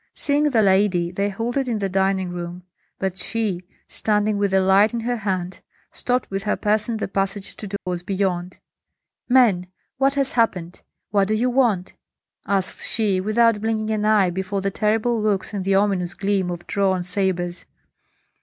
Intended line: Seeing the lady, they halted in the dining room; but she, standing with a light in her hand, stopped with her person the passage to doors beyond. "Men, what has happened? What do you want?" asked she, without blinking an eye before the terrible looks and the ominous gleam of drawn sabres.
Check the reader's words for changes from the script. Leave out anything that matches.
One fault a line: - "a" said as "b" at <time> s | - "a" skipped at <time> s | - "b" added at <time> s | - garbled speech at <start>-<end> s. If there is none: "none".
none